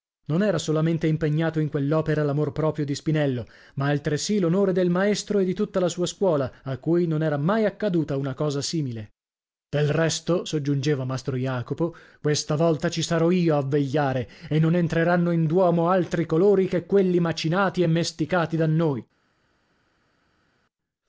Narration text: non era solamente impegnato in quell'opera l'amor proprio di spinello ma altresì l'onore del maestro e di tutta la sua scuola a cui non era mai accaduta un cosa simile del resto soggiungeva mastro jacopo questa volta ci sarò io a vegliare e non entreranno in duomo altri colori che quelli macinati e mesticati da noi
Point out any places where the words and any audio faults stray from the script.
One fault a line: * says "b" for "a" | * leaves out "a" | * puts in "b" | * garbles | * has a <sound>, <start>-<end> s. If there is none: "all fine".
* says "una" for "un"